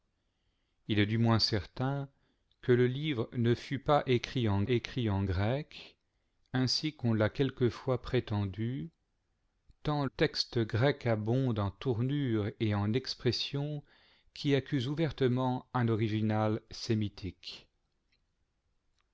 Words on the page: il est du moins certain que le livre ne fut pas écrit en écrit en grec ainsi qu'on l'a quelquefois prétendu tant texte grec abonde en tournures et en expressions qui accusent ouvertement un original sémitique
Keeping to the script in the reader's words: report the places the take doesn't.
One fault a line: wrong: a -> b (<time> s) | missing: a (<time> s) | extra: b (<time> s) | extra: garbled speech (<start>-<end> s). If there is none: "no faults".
no faults